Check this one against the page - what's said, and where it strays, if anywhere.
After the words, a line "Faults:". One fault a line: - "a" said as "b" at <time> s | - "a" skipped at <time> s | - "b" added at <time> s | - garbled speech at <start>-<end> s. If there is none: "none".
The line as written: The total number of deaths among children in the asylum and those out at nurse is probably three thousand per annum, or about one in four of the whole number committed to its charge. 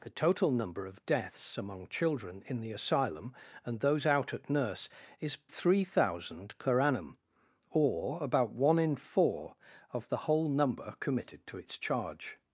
The total number of deaths among children in the asylum and those out at nurse is three thousand per annum, or about one in four of the whole number committed to its charge.
Faults:
- "probably" skipped at 5.4 s